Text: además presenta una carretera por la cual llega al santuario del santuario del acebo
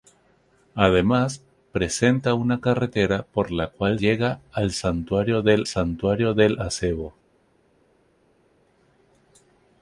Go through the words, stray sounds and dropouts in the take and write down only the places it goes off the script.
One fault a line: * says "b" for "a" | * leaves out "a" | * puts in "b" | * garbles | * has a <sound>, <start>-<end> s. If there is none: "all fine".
all fine